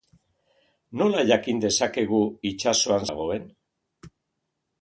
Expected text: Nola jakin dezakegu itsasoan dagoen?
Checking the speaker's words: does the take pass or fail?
pass